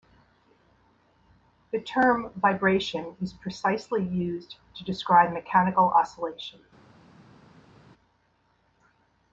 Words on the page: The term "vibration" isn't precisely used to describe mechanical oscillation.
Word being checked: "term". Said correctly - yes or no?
yes